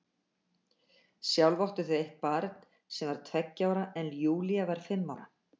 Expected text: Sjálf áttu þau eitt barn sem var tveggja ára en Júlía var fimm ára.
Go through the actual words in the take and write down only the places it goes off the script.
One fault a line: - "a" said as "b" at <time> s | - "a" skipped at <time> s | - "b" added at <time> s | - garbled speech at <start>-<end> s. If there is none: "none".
none